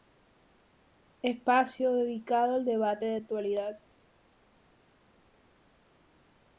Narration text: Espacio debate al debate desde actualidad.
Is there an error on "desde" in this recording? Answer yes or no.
yes